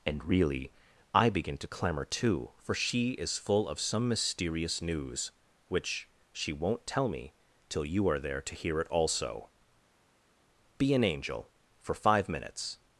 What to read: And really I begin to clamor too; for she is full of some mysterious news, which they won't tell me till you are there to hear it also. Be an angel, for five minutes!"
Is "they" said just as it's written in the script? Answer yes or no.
no